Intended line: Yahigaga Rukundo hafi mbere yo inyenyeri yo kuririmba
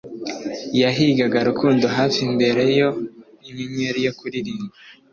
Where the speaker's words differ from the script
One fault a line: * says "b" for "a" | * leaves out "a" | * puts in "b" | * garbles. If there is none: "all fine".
all fine